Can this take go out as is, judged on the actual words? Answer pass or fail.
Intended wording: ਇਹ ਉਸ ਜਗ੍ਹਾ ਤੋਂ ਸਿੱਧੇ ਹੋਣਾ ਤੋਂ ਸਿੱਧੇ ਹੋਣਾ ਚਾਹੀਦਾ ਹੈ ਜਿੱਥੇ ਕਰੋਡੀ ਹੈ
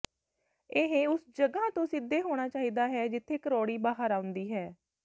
fail